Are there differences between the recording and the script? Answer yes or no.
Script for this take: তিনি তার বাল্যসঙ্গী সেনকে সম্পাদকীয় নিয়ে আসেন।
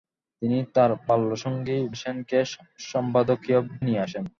no